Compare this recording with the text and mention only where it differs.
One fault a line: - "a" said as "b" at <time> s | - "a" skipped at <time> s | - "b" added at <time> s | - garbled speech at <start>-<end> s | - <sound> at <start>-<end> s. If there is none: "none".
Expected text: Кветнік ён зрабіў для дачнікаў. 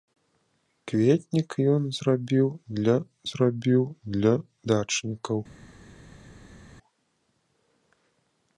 - "зрабіў для" added at 3.3 s